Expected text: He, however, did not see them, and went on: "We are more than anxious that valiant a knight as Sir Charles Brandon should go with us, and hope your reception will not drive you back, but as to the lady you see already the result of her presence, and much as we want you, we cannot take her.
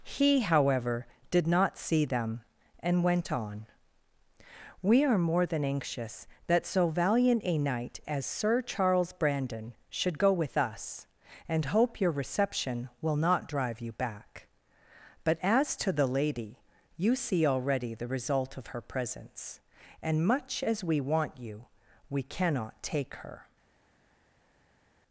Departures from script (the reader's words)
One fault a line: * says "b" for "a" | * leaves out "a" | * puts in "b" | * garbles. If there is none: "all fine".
* puts in "so"